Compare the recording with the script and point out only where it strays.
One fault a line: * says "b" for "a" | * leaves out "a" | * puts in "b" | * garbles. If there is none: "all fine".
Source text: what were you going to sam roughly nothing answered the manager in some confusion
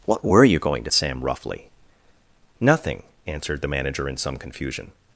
all fine